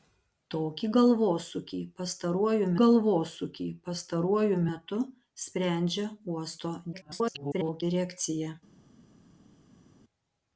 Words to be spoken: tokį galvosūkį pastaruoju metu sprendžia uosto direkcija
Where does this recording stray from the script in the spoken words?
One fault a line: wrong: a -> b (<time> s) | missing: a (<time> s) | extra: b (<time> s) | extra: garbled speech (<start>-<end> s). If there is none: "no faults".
extra: galvosūkį pastaruoju (2.8 s)
extra: garbled speech (6.9-7.8 s)